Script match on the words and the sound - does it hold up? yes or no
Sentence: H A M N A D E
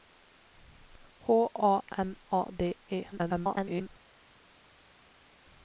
no